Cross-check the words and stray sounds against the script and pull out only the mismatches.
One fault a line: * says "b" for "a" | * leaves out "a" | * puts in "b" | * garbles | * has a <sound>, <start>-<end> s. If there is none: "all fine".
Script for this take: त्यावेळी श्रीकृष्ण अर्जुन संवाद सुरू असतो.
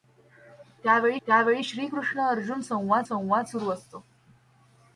* puts in "त्यावेळी"
* puts in "संवाद"